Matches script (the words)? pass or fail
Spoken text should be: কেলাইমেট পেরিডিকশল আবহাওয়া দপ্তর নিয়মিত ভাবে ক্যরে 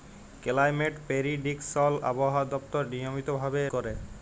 pass